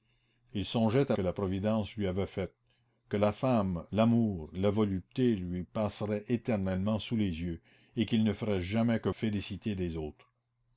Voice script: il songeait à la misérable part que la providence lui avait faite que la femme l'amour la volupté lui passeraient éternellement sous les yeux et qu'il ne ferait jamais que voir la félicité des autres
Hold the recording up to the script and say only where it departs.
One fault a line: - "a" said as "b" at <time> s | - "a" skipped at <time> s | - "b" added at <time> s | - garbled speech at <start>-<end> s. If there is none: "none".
- "la misérable part" skipped at 1.1 s
- "voir la" skipped at 9.1 s